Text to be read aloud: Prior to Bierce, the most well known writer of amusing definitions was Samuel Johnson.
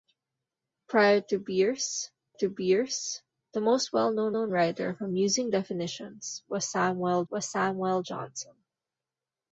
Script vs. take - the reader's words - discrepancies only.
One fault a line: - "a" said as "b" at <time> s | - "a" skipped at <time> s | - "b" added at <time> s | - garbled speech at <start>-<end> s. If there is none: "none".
- "to Bierce" added at 2.3 s
- "known" added at 4.3 s
- "was Samuel" added at 7.3 s